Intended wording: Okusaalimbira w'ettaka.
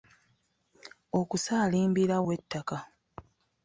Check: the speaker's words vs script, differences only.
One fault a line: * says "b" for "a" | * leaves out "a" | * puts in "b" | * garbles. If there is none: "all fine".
all fine